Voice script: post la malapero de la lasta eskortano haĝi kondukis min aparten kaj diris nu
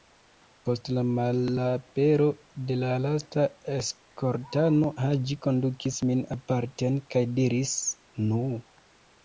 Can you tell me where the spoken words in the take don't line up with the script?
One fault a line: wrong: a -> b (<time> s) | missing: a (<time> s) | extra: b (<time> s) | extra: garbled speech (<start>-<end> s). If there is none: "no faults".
no faults